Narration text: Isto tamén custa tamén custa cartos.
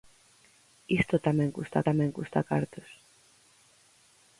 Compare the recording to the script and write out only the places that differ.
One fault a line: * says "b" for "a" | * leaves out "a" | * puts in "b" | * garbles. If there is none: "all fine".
all fine